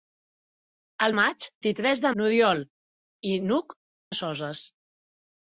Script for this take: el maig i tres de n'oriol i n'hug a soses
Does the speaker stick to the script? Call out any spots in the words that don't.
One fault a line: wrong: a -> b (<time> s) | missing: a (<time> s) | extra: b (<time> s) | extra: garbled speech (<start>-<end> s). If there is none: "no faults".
no faults